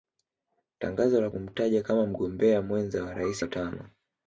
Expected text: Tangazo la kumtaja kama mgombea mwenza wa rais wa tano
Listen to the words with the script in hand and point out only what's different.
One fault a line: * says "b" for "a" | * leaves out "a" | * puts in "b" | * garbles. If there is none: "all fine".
all fine